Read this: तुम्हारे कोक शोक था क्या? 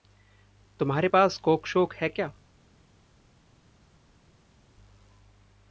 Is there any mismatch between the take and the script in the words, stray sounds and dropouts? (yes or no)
yes